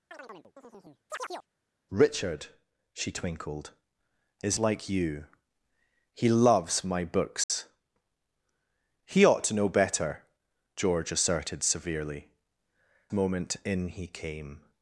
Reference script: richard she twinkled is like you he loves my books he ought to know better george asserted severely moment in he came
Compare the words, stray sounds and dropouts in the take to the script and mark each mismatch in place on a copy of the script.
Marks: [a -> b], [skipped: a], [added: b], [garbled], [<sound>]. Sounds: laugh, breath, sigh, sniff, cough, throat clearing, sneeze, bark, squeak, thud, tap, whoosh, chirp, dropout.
[chirp] richard she twinkled is like you he loves my books [dropout] he ought to know better george asserted severely moment in he came